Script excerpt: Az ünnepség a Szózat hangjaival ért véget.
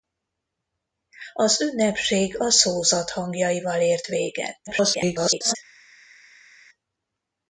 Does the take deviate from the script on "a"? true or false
false